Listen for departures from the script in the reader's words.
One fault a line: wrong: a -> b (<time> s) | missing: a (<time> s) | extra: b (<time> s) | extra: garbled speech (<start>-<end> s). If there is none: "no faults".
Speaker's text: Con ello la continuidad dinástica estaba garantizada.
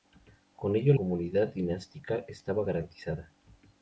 missing: la (0.9 s)